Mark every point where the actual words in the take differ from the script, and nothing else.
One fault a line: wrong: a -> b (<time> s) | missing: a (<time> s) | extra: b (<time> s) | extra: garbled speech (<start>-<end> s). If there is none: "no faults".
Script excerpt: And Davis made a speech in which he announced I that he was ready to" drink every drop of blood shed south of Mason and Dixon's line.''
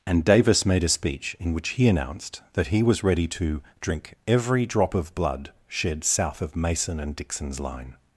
missing: I (2.4 s)